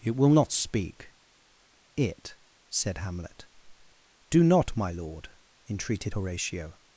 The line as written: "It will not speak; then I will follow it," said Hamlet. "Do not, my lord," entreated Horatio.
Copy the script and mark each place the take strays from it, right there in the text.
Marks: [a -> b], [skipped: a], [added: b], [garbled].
"It will not speak; [skipped: then I will follow] it," said Hamlet. "Do not, my lord," entreated Horatio.